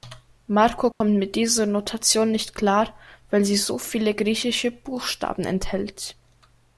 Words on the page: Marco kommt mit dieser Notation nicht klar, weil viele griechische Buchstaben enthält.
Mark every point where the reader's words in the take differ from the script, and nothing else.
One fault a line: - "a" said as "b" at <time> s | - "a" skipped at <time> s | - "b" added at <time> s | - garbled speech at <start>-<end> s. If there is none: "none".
- "sie so" added at 3.4 s